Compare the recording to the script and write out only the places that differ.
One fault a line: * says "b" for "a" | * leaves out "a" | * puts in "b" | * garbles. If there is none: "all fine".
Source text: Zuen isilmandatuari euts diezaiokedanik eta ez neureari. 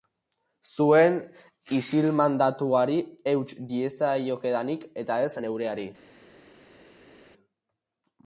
all fine